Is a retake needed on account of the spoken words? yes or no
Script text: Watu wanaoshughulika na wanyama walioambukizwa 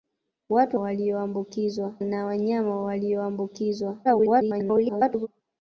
yes